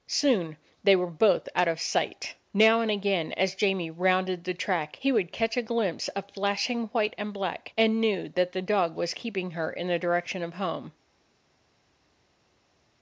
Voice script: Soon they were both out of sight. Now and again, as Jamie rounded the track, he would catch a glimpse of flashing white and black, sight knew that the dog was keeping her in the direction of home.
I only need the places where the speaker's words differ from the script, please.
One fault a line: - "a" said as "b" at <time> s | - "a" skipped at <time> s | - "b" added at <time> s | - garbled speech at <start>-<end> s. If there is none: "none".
- "sight" said as "and" at 7.8 s